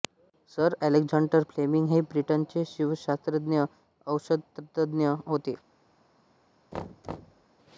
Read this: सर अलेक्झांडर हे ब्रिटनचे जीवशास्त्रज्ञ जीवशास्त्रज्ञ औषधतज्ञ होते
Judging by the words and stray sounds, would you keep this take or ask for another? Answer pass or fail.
fail